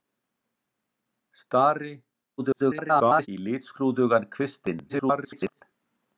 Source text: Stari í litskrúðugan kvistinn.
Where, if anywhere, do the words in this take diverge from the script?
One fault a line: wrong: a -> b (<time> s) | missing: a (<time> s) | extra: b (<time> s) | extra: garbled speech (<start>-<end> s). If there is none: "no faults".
extra: garbled speech (2.4-3.3 s)
extra: garbled speech (4.9-5.6 s)